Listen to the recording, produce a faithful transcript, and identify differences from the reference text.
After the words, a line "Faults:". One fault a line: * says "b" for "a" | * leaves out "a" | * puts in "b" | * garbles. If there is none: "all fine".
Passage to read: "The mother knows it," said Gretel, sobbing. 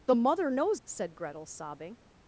"The mother knows," said Gretel, sobbing.
Faults:
* leaves out "it"